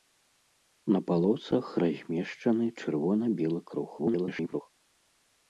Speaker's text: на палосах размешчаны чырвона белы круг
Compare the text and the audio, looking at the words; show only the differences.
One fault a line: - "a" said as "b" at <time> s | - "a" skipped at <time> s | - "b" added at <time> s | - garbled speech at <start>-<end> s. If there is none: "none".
- garbled speech at 4.0-4.6 s